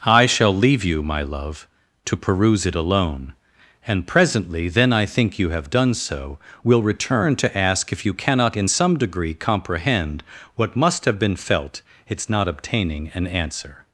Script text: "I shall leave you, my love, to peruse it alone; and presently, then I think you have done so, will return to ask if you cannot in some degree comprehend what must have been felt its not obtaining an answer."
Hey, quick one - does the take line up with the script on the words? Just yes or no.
yes